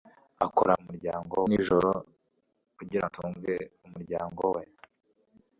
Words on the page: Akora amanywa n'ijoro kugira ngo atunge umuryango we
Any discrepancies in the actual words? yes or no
yes